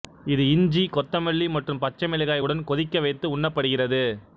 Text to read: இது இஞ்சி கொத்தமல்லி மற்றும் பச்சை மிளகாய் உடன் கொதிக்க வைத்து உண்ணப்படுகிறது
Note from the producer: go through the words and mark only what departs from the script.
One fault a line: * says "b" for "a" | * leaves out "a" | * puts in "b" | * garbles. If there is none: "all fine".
all fine